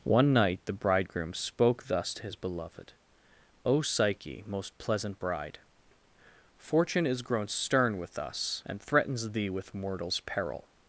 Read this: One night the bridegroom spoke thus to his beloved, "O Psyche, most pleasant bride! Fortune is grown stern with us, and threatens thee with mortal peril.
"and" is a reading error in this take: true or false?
false